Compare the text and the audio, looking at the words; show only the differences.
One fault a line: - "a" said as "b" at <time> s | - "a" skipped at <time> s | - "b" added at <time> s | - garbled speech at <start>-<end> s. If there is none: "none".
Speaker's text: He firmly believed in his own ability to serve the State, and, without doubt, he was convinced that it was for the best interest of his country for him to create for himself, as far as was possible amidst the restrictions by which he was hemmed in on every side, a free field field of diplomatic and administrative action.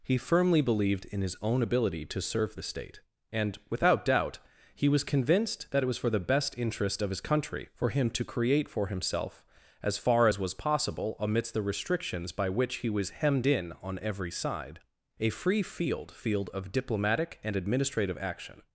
none